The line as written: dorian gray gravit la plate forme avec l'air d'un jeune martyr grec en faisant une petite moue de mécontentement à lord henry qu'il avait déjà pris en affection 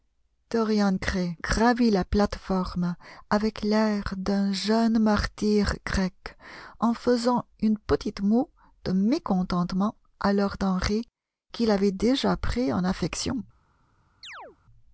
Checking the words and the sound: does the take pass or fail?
fail